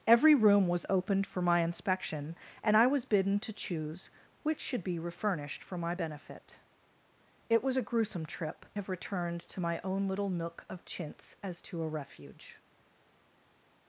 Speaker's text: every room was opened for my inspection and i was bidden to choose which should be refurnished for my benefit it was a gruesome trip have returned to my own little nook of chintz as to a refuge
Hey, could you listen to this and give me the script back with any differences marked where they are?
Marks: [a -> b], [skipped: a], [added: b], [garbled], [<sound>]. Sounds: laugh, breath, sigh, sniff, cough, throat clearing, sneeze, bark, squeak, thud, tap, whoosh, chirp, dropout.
every room was opened for my inspection and i was bidden to choose which should be refurnished for my benefit it was a gruesome trip have returned to my own little nook of chintz as to a refuge